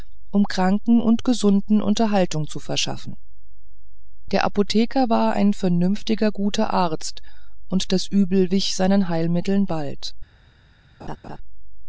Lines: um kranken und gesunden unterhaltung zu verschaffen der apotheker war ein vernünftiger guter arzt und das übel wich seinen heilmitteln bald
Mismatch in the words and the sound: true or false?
true